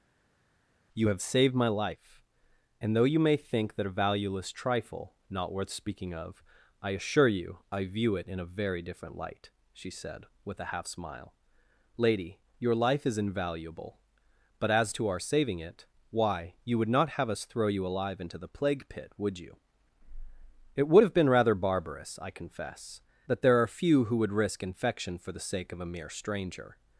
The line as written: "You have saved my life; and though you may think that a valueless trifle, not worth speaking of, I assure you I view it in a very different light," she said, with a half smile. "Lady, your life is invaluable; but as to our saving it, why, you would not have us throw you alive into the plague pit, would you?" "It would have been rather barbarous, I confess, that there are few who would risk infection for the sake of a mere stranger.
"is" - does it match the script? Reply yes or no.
yes